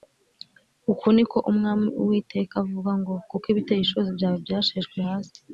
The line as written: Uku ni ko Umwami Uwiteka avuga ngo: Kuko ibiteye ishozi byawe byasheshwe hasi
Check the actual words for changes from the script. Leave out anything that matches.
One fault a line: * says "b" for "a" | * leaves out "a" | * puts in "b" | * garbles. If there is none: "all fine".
all fine